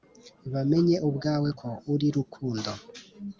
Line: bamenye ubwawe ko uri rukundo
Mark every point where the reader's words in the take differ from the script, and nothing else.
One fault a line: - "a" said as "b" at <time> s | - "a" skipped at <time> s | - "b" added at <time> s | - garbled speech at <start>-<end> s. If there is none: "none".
none